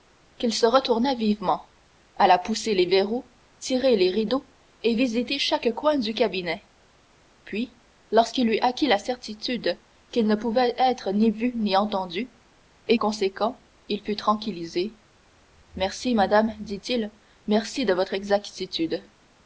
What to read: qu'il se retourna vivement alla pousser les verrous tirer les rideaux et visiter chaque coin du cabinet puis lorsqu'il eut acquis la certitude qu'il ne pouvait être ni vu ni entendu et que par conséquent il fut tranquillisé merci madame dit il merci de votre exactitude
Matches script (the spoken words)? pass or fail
fail